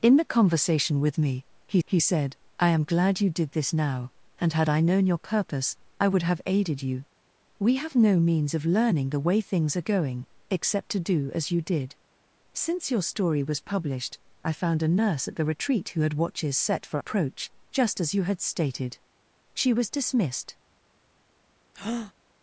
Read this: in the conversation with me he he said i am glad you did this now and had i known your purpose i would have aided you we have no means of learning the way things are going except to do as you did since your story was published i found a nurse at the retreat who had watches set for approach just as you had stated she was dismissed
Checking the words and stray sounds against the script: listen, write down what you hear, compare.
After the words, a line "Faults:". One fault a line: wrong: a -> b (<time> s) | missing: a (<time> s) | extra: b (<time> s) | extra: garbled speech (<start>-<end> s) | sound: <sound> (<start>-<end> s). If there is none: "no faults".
in the conversation with me he he said i am glad you did this now and had i known your purpose i would have aided you we have no means of learning the way things are going except to do as you did since your story was published i found a nurse at the retreat who had watches set for approach just as you had stated she was dismissed
Faults:
sound: breath (21.7-22.1 s)